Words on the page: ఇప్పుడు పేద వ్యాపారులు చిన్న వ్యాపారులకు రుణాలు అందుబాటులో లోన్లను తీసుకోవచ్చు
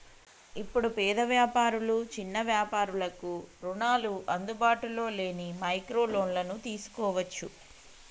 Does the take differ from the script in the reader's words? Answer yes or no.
yes